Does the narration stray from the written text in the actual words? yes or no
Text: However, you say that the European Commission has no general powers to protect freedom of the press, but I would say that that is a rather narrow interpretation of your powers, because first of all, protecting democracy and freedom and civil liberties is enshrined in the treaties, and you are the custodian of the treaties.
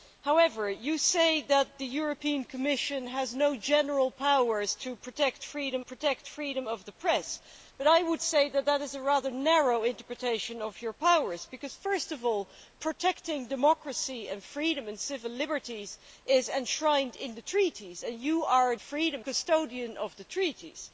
yes